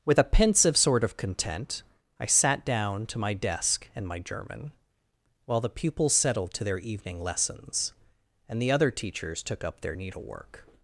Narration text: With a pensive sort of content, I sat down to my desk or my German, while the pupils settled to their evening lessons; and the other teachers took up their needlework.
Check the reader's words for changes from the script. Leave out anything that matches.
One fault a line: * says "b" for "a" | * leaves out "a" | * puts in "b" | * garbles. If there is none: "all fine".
* says "and" for "or"